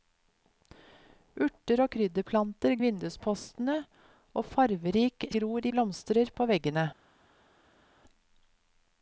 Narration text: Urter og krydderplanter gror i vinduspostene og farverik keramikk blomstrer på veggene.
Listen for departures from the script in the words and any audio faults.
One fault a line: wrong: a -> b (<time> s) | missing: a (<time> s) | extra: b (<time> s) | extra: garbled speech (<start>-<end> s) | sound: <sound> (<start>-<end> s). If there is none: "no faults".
missing: gror (2.7 s)
wrong: keramikk -> gror (5.4 s)